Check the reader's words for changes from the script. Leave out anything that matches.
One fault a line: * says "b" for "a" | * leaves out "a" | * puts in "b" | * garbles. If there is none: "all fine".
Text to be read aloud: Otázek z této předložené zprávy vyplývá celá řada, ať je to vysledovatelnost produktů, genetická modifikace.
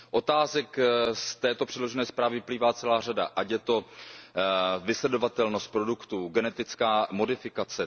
all fine